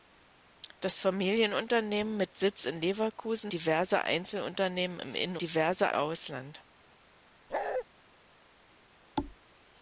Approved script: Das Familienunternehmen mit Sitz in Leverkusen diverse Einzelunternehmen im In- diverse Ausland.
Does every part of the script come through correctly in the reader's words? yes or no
yes